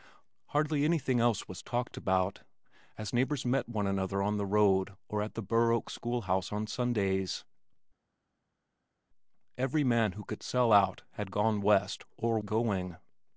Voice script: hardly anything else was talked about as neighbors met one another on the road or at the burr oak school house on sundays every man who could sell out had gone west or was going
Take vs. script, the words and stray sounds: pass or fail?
fail